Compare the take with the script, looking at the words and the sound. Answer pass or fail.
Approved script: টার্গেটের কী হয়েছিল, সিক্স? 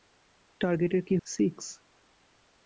fail